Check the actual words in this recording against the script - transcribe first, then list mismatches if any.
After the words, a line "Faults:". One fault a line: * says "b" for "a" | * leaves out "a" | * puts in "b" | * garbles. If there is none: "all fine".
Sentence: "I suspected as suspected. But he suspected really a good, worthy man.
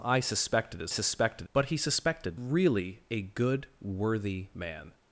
"I suspected as suspected. But he suspected really a good, worthy man.
Faults:
all fine